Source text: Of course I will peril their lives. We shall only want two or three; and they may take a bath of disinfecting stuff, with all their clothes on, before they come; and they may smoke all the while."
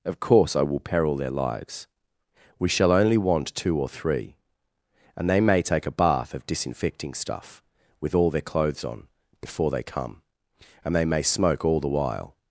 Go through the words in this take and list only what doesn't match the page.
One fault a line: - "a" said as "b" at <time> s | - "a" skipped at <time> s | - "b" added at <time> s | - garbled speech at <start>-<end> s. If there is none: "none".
none